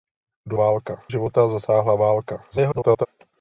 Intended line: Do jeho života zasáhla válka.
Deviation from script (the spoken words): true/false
true